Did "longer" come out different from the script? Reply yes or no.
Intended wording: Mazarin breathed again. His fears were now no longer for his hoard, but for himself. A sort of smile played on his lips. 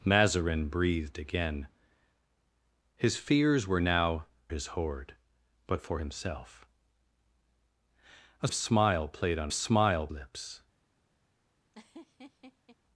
yes